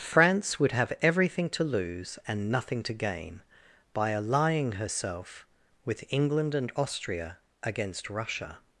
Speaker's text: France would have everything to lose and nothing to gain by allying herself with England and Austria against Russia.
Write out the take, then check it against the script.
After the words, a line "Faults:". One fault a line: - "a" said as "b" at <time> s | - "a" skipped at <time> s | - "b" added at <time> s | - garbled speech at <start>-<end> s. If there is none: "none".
France would have everything to lose and nothing to gain by allying herself with England and Austria against Russia.
Faults:
none